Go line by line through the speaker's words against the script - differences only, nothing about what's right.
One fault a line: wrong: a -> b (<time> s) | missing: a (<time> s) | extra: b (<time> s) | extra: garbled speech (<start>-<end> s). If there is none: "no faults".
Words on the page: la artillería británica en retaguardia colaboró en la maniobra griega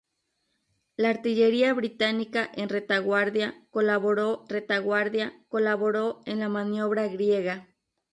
extra: retaguardia colaboró (4.5 s)